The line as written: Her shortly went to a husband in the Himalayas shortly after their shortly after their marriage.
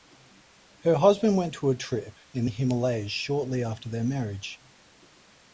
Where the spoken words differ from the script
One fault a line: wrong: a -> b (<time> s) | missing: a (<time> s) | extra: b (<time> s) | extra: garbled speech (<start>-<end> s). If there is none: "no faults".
wrong: shortly -> husband (0.9 s)
wrong: husband -> trip (1.8 s)
missing: shortly after their (4.0 s)